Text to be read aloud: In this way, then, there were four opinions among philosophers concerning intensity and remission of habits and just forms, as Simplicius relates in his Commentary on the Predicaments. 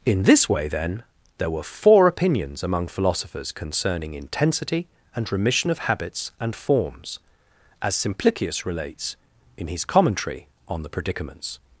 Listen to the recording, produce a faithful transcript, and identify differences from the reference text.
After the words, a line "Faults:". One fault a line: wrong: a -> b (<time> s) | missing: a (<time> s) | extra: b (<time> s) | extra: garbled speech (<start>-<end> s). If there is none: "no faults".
In this way, then, there were four opinions among philosophers concerning intensity and remission of habits and forms, as Simplicius relates in his Commentary on the Predicaments.
Faults:
missing: just (6.5 s)